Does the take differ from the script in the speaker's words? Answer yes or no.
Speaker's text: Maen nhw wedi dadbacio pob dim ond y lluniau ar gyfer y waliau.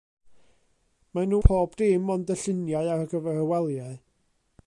yes